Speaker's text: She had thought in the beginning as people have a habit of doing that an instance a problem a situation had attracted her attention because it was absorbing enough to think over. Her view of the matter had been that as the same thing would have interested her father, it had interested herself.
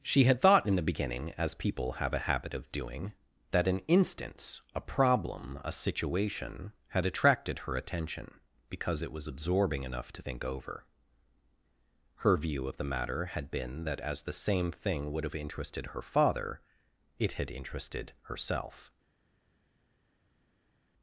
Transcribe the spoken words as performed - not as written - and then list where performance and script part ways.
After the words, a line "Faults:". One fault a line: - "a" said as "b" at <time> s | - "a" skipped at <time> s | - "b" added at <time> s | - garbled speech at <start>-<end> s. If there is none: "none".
She had thought in the beginning as people have a habit of doing that an instance a problem a situation had attracted her attention because it was absorbing enough to think over. Her view of the matter had been that as the same thing would have interested her father, it had interested herself.
Faults:
none